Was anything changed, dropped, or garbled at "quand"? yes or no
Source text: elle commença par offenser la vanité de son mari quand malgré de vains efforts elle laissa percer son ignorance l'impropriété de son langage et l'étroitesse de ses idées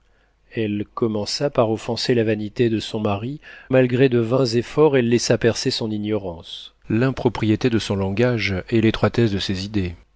yes